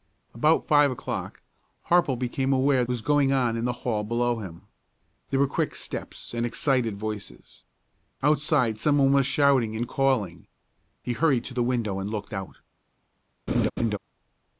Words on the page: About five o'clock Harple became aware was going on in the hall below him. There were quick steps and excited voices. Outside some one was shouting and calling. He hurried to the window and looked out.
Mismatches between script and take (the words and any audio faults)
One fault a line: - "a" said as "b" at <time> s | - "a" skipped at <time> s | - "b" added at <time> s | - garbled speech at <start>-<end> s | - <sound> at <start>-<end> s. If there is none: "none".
- laugh at 13.5-14.0 s